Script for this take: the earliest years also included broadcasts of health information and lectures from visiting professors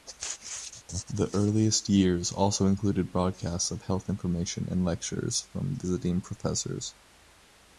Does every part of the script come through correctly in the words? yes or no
yes